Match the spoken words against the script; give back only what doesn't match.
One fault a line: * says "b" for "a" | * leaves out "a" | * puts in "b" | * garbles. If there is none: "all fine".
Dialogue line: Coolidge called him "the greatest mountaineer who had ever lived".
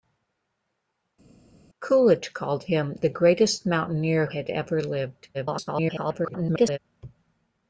* leaves out "who"
* garbles